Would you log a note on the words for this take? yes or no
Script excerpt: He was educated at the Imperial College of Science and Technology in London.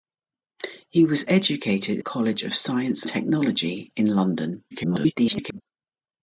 yes